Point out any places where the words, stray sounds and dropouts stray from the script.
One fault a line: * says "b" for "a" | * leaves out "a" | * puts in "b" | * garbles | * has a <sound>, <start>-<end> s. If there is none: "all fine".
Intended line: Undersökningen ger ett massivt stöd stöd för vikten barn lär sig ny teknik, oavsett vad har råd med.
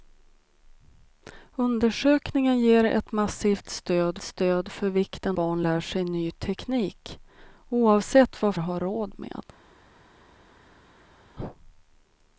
all fine